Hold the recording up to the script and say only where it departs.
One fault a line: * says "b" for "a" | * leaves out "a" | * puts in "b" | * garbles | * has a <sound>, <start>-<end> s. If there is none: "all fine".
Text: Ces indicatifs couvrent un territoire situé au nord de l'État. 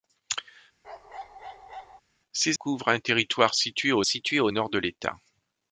* has a bark, 0.8-2.0 s
* leaves out "indicatifs"
* puts in "situé au"